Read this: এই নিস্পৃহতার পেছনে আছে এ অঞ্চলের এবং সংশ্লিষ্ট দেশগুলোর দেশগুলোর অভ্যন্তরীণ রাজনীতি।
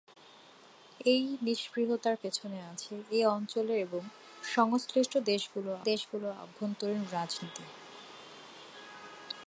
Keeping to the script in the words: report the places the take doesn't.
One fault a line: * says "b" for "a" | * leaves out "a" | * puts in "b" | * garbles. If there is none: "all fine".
all fine